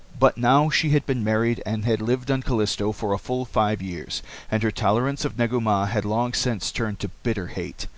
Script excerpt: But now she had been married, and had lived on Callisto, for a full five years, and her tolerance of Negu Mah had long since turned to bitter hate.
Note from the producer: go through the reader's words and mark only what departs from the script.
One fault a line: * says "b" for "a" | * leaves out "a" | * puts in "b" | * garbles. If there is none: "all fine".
all fine